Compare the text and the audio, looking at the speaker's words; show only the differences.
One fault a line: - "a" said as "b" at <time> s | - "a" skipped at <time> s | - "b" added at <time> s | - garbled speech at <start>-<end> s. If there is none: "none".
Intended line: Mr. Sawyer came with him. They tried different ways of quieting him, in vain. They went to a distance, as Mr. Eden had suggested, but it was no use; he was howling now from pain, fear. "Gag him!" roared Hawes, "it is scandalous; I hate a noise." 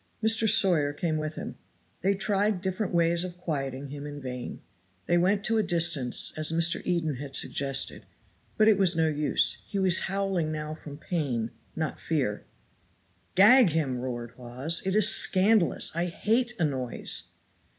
- "not" added at 11.7 s